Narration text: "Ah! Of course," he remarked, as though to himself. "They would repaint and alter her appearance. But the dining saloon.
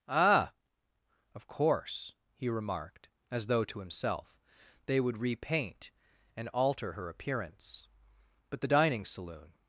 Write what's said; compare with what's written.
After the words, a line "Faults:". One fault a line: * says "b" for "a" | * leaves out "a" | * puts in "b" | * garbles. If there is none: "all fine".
"Ah! Of course," he remarked, as though to himself. "They would repaint and alter her appearance. But the dining saloon.
Faults:
all fine